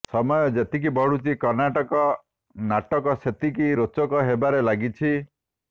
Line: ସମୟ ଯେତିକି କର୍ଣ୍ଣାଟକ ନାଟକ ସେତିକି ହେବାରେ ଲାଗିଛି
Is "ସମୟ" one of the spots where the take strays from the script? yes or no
no